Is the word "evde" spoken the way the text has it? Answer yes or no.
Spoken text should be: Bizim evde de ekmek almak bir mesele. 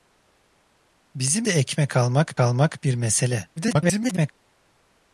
no